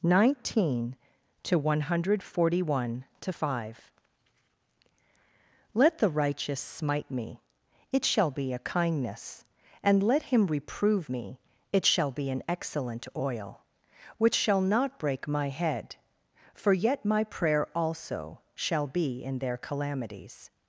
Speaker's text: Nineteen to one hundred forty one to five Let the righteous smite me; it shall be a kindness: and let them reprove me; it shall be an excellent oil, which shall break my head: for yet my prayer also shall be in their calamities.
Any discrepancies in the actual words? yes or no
yes